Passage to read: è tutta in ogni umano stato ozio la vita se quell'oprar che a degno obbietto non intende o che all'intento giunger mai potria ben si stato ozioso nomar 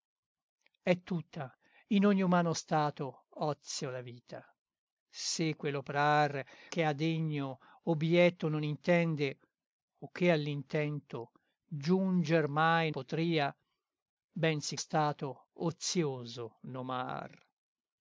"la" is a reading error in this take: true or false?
false